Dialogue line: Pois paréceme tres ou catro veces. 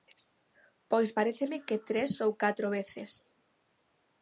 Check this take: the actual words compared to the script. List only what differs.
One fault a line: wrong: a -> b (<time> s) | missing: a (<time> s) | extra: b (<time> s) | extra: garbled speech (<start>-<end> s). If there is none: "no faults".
extra: que (1.7 s)